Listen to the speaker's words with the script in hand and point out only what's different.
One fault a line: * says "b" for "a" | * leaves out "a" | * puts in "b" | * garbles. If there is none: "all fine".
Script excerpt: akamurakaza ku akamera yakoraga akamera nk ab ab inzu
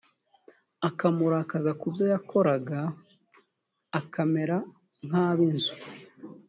* says "byo" for "akamera"
* leaves out "ab"